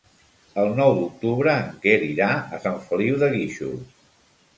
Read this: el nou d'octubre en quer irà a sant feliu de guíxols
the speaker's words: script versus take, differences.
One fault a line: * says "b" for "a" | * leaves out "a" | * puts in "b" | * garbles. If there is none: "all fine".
all fine